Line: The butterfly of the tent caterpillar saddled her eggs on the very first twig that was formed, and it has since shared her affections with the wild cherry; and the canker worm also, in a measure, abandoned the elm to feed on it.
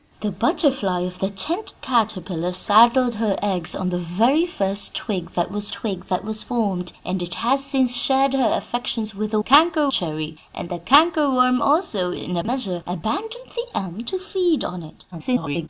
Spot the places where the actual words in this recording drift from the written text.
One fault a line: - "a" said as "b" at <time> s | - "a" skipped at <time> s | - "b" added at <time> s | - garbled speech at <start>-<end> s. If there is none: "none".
- "twig that was" added at 5.7 s
- "wild" said as "canker" at 9.4 s
- garbled speech at 15.1-15.7 s